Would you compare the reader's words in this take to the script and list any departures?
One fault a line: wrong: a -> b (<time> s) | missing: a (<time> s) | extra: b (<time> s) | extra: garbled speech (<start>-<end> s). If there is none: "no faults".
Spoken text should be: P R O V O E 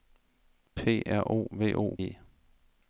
no faults